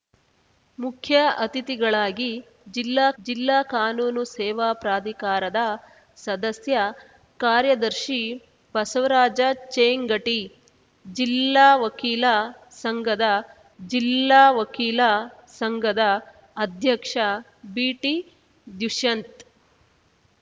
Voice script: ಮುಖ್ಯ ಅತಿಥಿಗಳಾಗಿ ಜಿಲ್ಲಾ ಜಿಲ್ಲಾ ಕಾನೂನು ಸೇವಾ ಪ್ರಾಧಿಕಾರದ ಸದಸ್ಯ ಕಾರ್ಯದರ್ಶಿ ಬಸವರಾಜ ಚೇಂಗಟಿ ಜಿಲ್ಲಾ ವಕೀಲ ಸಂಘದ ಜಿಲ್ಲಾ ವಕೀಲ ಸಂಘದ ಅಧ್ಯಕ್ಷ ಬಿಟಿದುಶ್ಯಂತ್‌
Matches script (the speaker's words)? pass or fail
pass